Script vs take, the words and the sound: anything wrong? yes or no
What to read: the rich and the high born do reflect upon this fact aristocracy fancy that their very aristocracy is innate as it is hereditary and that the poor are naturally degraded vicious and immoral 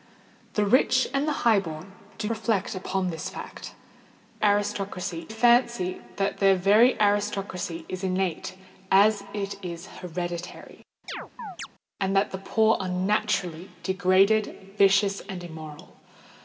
yes